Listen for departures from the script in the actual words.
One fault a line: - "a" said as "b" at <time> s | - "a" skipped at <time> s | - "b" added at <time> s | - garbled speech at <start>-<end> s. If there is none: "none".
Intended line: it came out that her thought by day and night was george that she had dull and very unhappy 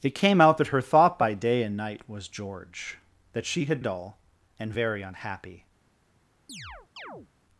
none